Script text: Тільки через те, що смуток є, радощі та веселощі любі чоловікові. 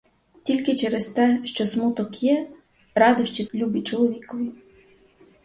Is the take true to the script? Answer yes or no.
no